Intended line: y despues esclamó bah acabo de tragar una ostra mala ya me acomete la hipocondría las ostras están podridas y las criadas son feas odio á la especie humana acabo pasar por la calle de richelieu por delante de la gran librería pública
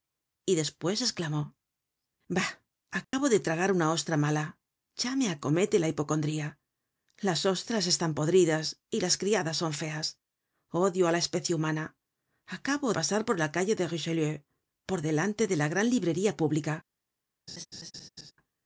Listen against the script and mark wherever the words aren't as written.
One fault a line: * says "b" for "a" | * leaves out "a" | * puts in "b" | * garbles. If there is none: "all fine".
all fine